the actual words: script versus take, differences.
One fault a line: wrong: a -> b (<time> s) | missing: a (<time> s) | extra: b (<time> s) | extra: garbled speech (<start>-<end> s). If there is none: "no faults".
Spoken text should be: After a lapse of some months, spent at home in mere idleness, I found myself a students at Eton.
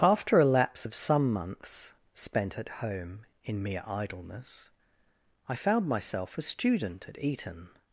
wrong: students -> student (6.4 s)